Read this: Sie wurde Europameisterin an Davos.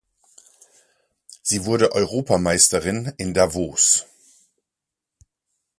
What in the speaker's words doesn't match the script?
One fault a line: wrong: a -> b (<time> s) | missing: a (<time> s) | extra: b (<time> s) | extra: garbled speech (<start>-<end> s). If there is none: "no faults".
wrong: an -> in (3.2 s)